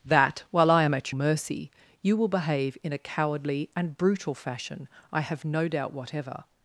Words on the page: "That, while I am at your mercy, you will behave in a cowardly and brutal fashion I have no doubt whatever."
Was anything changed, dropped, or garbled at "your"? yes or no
yes